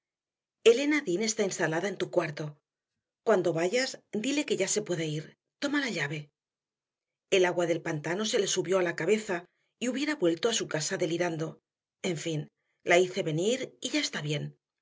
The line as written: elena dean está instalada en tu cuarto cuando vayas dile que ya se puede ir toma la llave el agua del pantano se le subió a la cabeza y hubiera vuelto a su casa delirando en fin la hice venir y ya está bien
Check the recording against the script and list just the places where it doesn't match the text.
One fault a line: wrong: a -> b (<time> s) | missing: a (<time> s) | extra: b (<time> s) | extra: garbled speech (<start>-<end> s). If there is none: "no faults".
no faults